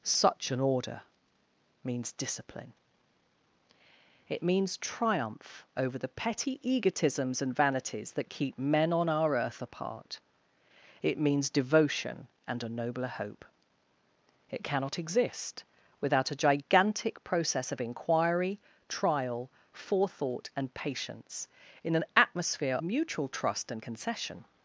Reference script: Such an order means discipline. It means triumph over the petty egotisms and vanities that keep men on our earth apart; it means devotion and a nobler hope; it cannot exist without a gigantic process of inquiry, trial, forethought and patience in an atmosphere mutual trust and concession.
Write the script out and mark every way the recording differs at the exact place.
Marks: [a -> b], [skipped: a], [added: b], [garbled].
Such an order means discipline. It means triumph over the petty egotisms and vanities that keep men on our earth apart; it means devotion and a nobler hope; it cannot exist without a gigantic process of inquiry, trial, forethought and patience in an atmosphere mutual trust and concession.